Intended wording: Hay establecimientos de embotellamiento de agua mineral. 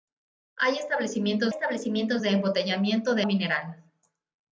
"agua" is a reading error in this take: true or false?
true